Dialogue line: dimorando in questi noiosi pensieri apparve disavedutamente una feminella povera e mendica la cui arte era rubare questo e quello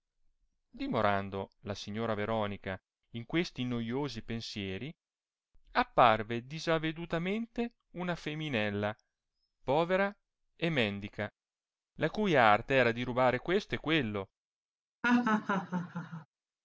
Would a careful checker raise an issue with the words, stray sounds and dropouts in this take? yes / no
yes